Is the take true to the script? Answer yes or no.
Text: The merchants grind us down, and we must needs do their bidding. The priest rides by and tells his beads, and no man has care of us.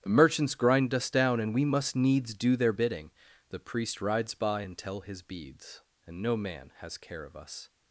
no